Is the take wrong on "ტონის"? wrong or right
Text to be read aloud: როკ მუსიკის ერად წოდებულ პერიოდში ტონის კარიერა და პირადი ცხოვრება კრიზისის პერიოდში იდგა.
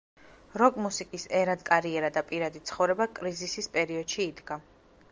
wrong